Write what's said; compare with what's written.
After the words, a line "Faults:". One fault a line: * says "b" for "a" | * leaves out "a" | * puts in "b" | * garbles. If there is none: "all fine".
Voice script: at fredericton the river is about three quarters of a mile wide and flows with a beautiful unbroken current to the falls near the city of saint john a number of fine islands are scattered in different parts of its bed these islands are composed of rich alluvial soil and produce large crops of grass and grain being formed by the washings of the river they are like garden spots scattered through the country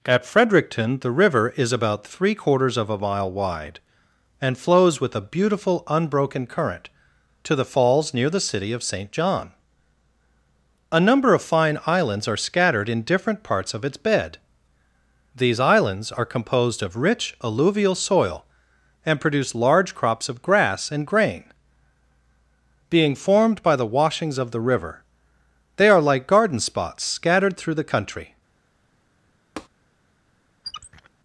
at fredericton the river is about three quarters of a mile wide and flows with a beautiful unbroken current to the falls near the city of saint john a number of fine islands are scattered in different parts of its bed these islands are composed of rich alluvial soil and produce large crops of grass and grain being formed by the washings of the river they are like garden spots scattered through the country
Faults:
all fine